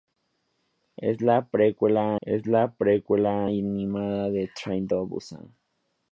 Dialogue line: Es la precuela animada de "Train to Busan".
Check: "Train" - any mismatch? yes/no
no